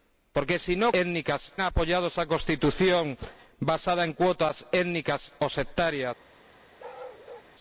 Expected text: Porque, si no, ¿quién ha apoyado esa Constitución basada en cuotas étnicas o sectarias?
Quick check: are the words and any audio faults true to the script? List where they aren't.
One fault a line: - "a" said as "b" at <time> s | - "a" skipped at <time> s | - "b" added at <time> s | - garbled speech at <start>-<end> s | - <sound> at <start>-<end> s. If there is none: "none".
- "quién" said as "étnicas" at 0.9 s
- bark at 6.8-7.5 s